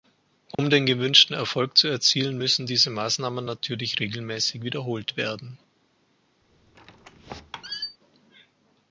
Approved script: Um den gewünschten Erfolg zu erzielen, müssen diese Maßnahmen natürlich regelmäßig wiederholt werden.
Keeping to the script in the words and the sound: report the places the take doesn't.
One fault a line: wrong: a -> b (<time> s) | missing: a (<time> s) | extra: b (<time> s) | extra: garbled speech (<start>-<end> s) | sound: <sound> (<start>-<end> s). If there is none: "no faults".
sound: dropout (0.5-0.6 s)
sound: squeak (6.4-8.0 s)